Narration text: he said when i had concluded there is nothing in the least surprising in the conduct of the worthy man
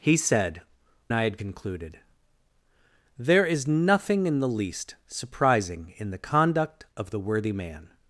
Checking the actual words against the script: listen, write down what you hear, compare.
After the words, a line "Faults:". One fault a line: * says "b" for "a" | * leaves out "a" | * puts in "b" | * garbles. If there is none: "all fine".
he said i had concluded there is nothing in the least surprising in the conduct of the worthy man
Faults:
* leaves out "when"